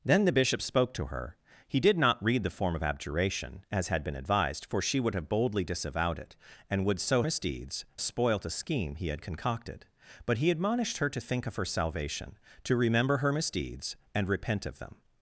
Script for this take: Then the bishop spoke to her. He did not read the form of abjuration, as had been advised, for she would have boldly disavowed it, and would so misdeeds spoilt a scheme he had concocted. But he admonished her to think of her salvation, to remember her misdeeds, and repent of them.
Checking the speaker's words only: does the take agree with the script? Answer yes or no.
yes